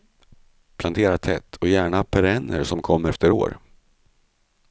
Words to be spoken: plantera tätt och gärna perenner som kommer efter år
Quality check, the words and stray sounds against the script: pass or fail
pass